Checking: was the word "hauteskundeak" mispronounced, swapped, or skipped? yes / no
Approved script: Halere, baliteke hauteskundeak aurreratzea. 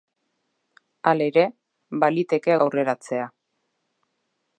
yes